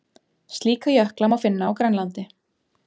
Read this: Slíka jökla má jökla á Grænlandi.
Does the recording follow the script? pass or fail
fail